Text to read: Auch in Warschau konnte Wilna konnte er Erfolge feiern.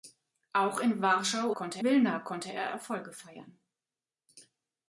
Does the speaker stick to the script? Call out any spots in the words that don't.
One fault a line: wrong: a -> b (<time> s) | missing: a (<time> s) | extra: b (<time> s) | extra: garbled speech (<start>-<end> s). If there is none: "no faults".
no faults